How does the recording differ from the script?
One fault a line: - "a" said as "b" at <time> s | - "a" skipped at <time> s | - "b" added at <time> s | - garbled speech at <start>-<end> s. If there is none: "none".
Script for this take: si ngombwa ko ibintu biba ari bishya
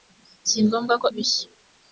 - "ibintu biba ari" skipped at 1.1 s